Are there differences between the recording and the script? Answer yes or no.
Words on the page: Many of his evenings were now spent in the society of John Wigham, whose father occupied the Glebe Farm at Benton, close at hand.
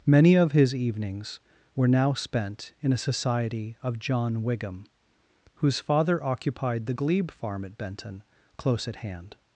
yes